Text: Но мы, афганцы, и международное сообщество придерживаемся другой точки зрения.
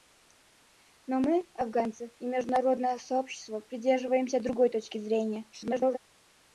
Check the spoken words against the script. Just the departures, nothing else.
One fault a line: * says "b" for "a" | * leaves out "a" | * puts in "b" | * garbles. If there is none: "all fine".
* garbles